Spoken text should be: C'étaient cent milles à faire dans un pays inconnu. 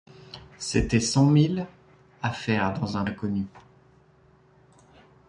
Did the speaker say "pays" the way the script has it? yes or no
no